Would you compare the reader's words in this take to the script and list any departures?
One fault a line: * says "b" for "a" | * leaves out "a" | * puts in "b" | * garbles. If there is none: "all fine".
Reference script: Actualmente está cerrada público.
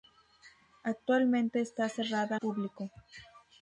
all fine